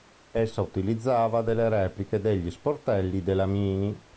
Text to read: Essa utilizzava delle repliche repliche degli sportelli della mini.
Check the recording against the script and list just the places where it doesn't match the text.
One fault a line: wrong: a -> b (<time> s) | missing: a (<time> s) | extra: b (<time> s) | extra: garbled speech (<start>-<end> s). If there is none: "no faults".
missing: repliche (2.2 s)